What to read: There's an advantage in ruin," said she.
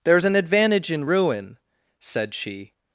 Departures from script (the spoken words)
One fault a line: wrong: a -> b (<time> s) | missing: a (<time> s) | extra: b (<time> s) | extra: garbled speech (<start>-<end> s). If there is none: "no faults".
no faults